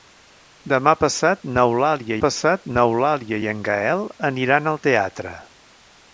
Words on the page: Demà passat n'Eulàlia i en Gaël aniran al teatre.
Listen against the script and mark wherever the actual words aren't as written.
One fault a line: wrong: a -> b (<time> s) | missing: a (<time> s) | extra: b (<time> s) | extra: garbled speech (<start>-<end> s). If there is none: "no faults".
extra: passat n'Eulàlia (2.2 s)